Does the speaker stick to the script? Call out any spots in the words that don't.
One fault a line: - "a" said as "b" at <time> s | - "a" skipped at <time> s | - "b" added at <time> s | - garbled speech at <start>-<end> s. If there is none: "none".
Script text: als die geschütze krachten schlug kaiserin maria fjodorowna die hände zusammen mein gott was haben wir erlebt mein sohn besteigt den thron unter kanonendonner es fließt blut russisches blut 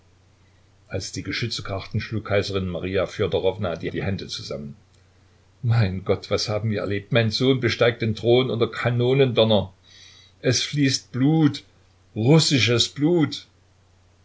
- "die" added at 3.9 s